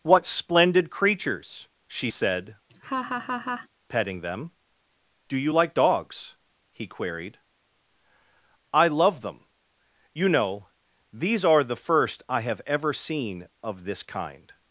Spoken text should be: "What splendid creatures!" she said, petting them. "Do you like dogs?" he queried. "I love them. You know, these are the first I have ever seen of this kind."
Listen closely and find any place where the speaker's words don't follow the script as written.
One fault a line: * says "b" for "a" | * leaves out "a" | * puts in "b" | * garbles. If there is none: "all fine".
all fine